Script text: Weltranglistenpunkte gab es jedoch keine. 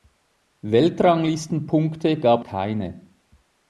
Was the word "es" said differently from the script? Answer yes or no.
yes